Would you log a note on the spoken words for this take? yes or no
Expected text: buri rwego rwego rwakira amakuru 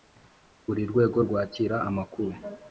yes